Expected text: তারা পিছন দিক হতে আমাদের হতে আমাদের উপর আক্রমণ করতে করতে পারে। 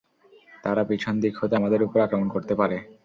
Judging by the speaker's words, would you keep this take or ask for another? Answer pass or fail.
fail